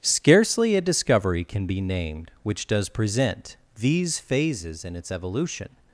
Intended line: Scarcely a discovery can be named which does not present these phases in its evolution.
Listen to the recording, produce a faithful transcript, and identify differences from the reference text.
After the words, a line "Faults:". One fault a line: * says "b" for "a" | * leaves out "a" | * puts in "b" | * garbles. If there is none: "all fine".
Scarcely a discovery can be named which does present these phases in its evolution.
Faults:
* leaves out "not"